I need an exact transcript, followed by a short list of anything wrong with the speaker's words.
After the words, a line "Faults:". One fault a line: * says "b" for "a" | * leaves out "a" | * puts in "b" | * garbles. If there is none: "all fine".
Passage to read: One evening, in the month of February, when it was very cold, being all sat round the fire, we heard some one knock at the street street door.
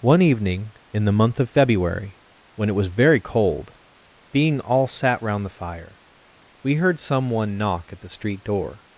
One evening, in the month of February, when it was very cold, being all sat round the fire, we heard some one knock at the street door.
Faults:
* leaves out "street"